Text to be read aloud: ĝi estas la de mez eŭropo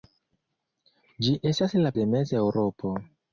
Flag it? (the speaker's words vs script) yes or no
no